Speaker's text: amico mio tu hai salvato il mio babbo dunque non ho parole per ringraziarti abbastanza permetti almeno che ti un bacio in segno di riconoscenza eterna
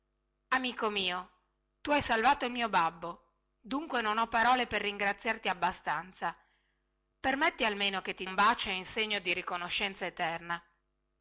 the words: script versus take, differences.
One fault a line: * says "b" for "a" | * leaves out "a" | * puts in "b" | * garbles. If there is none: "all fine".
all fine